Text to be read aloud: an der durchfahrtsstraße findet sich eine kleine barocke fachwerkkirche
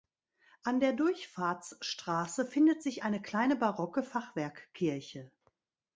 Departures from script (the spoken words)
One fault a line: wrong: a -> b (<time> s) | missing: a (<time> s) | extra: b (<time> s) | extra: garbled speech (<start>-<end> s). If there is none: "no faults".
no faults